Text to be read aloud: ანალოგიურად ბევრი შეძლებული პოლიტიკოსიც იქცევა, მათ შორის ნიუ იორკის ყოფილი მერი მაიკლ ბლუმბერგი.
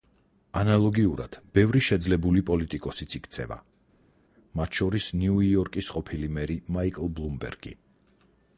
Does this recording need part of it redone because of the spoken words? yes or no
no